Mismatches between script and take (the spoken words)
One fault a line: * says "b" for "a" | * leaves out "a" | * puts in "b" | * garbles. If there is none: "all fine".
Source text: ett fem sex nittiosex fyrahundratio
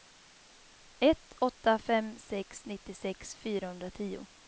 * puts in "åtta"